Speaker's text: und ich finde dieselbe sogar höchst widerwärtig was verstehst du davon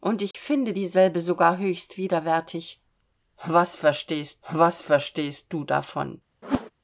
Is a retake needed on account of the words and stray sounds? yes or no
yes